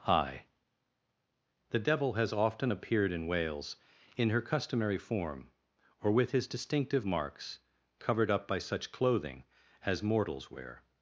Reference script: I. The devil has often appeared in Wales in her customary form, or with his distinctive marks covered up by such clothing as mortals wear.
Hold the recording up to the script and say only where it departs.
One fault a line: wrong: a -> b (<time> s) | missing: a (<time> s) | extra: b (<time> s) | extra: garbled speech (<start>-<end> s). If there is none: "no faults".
no faults